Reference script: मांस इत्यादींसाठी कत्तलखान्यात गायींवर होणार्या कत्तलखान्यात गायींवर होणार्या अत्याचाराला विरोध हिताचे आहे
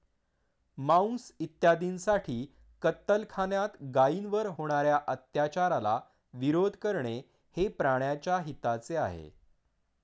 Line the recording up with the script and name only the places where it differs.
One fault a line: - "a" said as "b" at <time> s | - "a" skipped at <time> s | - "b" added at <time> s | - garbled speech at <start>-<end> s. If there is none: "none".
- "कत्तलखान्यात गायींवर होणार्या अत्याचाराला विरोध" said as "अत्याचाराला विरोध करणे हे प्राण्याच्या" at 5.1 s